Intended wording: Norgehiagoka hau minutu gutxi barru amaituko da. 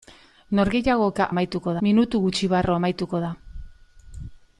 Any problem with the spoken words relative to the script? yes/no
yes